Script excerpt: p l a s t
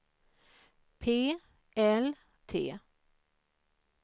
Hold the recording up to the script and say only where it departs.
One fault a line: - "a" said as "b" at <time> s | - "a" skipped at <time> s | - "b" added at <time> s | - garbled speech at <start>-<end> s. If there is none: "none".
- "a s" skipped at 2.1 s